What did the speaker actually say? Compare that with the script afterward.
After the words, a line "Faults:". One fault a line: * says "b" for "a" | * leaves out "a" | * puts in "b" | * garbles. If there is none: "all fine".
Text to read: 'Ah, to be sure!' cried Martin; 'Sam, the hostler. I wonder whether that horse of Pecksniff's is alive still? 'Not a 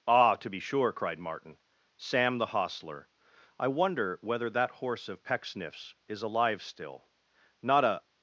'Ah, to be sure!' cried Martin; 'Sam, the hostler. I wonder whether that horse of Pecksniff's is alive still? 'Not a
Faults:
all fine